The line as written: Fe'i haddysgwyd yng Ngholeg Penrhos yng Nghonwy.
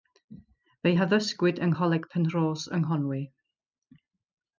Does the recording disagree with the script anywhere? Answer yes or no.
no